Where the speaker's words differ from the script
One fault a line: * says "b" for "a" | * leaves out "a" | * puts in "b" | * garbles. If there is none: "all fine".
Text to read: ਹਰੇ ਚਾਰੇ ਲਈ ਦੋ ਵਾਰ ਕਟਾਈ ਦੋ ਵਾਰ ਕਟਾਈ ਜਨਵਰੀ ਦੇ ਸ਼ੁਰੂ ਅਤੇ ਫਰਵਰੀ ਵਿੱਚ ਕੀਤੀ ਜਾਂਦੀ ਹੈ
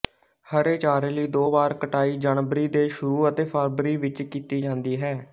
* leaves out "ਦੋ ਵਾਰ ਕਟਾਈ"